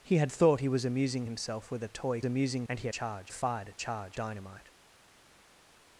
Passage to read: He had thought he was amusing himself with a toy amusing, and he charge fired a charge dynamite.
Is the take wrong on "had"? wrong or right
right